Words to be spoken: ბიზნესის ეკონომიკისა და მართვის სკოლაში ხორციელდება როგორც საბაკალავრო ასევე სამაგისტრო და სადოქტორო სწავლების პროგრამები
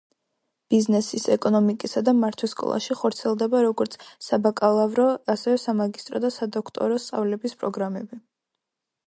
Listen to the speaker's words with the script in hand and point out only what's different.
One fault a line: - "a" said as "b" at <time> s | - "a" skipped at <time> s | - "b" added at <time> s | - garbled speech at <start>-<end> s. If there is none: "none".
none